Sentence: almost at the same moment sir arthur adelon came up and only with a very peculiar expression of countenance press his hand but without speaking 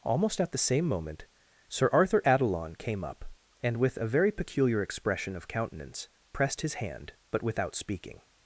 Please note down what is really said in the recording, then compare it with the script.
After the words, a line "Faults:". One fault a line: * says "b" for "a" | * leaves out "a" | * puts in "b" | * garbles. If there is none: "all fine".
almost at the same moment sir arthur adelon came up and with a very peculiar expression of countenance pressed his hand but without speaking
Faults:
* leaves out "only"
* says "pressed" for "press"